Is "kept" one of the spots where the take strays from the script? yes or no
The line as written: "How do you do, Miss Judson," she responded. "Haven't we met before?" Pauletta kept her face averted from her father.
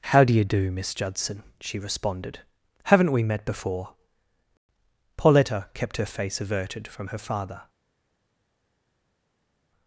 no